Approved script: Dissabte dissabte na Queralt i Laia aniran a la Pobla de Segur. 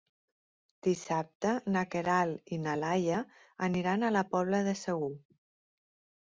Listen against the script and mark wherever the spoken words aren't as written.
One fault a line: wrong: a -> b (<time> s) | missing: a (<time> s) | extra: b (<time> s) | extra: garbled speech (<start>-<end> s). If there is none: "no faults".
missing: dissabte (1.5 s)
extra: na (2.6 s)